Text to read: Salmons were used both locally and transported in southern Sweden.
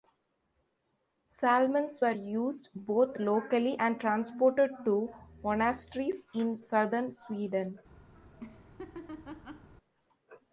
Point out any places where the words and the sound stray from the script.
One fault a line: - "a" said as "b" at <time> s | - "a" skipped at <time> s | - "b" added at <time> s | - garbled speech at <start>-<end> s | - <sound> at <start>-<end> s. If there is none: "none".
- "to monasteries" added at 4.8 s
- laugh at 8.1-9.7 s